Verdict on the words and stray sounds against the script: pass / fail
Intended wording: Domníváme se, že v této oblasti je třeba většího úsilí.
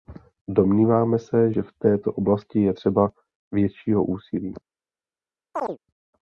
fail